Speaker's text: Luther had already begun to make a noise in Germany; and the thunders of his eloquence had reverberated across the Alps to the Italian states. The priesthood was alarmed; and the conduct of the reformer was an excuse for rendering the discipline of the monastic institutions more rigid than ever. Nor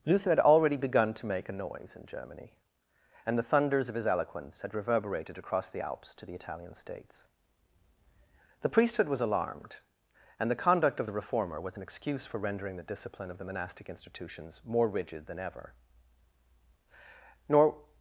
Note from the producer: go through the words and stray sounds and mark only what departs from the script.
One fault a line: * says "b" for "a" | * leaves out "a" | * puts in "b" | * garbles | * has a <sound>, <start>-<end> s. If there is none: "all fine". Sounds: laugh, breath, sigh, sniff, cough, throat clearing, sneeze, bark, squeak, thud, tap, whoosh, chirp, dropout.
all fine